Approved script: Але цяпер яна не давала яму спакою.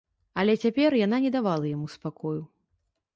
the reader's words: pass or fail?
pass